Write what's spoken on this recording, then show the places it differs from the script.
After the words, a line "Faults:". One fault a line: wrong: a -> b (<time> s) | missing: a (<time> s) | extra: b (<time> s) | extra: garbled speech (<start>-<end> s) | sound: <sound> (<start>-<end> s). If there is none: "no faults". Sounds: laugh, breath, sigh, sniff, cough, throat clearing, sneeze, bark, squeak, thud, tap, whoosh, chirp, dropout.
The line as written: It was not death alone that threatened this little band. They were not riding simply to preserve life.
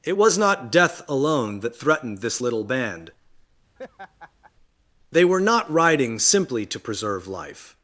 It was not death alone that threatened this little band. They were not riding simply to preserve life.
Faults:
sound: laugh (3.8-4.5 s)